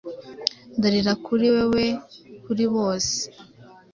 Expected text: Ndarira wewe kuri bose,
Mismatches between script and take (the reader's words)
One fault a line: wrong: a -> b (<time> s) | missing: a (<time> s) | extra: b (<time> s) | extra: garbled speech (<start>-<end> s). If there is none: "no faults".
extra: kuri (1.2 s)